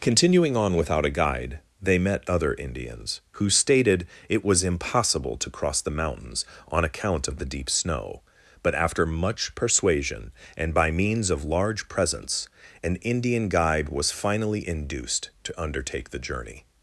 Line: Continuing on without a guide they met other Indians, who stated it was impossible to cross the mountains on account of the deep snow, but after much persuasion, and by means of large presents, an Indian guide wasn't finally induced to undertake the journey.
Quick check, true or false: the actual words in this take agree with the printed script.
false